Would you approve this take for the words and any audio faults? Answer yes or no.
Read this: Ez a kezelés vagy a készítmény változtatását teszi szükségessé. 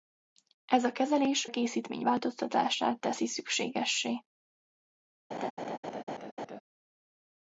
no